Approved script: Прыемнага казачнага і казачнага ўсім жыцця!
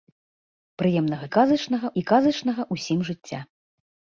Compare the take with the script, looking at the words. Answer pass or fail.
pass